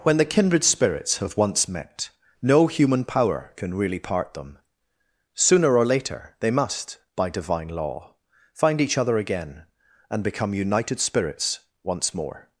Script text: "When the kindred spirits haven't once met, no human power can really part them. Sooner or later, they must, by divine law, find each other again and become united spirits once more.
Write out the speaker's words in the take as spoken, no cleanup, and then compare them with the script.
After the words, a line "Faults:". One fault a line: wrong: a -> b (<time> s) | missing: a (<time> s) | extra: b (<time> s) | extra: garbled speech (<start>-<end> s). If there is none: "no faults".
"When the kindred spirits have once met, no human power can really part them. Sooner or later, they must, by divine law, find each other again and become united spirits once more.
Faults:
wrong: haven't -> have (1.2 s)